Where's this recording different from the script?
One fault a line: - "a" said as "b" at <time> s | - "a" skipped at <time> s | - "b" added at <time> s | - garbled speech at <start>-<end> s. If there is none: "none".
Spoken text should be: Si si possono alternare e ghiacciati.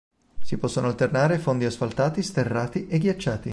- "si" skipped at 0.6 s
- "fondi asfaltati sterrati" added at 1.4 s